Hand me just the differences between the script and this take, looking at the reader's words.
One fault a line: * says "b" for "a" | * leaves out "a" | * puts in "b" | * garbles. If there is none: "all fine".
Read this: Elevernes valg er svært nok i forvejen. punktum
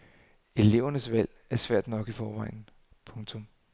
all fine